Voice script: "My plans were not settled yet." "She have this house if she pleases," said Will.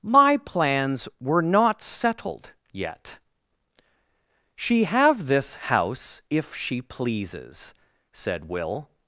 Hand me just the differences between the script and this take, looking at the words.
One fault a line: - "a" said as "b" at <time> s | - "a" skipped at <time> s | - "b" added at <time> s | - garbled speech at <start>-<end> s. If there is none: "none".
none